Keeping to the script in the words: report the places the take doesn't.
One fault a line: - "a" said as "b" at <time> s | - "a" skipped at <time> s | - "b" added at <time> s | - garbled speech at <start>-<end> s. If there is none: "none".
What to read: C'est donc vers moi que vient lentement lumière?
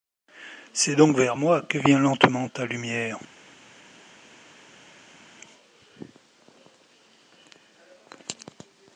- "ta" added at 2.5 s